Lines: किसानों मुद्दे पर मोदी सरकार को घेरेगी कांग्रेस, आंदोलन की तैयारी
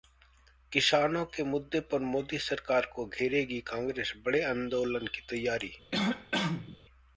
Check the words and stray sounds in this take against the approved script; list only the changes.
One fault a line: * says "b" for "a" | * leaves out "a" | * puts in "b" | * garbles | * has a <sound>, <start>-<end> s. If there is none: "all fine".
* puts in "के"
* puts in "बड़े"
* has a cough, 5.9-6.8 s